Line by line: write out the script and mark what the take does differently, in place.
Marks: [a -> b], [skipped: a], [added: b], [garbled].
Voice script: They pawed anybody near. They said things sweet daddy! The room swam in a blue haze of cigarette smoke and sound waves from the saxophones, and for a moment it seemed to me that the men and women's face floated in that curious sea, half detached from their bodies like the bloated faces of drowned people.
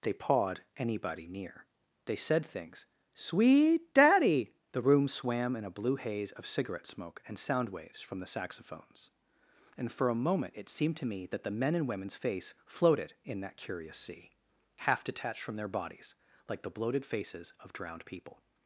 They pawed anybody near. They said things sweet daddy! The room swam in a blue haze of cigarette smoke and sound waves from the saxophones, and for a moment it seemed to me that the men and women's face floated in that curious sea, half detached from their bodies like the bloated faces of drowned people.